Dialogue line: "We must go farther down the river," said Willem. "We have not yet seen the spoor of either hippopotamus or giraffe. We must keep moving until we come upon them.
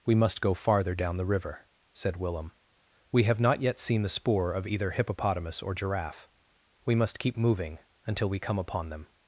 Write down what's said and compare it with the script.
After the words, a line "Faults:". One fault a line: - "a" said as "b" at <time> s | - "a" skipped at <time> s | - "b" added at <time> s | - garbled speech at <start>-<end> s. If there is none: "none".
"We must go farther down the river," said Willem. "We have not yet seen the spoor of either hippopotamus or giraffe. We must keep moving until we come upon them.
Faults:
none